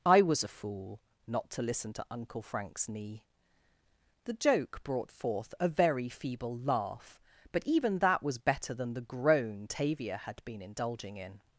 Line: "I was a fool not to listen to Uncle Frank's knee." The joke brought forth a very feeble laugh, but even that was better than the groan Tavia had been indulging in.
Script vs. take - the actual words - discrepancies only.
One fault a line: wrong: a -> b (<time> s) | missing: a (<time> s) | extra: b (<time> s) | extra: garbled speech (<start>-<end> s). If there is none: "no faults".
no faults